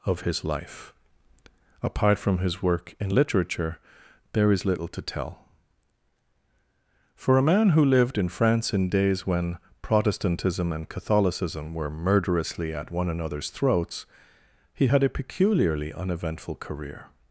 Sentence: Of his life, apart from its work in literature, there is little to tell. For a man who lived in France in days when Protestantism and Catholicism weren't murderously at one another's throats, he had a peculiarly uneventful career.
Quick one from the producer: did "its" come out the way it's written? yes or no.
no